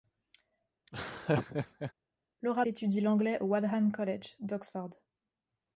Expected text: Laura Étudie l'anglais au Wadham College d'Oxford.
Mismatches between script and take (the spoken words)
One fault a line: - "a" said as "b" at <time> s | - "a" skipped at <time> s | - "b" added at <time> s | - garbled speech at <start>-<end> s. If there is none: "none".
none